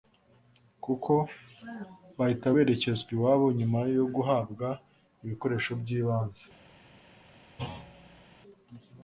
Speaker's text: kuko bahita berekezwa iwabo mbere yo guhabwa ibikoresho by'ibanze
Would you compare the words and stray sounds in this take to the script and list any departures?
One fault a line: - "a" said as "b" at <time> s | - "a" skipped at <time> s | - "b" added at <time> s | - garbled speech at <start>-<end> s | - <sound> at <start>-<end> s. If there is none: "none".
- "mbere" said as "nyuma" at 3.6 s
- thud at 7.6-8.3 s